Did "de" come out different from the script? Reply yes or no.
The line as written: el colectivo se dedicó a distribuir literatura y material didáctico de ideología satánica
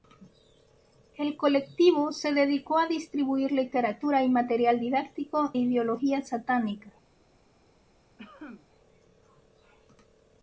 yes